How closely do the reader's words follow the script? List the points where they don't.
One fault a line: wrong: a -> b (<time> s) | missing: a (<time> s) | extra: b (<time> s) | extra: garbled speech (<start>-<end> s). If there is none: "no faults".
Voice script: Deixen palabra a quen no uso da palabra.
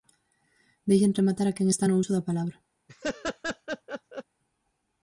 wrong: palabra -> rematar (1.2 s)
extra: está (1.7 s)